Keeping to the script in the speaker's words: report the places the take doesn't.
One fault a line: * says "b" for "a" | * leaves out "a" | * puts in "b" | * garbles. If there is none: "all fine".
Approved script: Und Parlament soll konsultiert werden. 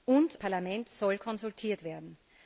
all fine